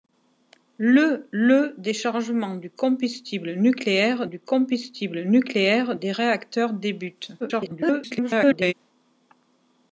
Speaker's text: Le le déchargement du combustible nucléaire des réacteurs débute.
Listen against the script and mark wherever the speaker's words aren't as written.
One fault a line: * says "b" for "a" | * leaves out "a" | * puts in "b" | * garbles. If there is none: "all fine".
* puts in "du combustible nucléaire"
* garbles